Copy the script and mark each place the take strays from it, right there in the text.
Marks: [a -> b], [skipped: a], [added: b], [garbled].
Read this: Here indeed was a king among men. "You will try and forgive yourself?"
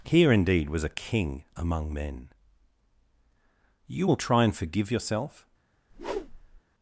Here indeed was a king among men. "You will try and forgive yourself?"